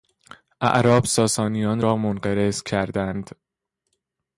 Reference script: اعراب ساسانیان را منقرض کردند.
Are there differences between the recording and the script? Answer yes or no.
no